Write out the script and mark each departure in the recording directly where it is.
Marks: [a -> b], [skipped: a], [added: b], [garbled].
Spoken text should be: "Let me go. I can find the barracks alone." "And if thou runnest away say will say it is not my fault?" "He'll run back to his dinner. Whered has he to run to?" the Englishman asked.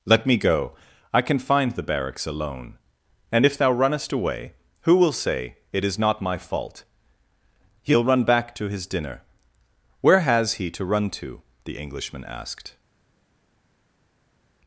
"Let me go. I can find the barracks alone." "And if thou runnest away [say -> who] will say it is not my fault?" "He'll run back to his dinner. [Whered -> Where] has he to run to?" the Englishman asked.